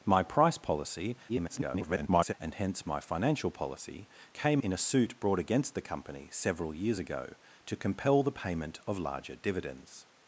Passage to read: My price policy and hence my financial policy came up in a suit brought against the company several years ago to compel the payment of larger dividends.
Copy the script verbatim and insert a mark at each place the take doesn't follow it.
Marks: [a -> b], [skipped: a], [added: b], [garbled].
My price policy [garbled] and hence my financial policy came [skipped: up] in a suit brought against the company several years ago to compel the payment of larger dividends.